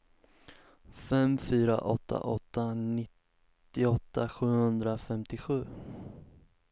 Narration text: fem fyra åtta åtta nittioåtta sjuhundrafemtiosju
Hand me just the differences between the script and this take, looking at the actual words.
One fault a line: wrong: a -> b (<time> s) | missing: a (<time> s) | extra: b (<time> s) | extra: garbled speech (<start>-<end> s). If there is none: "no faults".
no faults